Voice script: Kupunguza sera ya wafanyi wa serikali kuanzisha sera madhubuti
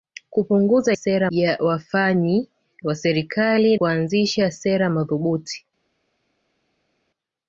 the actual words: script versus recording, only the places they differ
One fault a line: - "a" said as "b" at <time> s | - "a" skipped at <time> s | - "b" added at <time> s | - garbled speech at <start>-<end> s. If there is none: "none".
none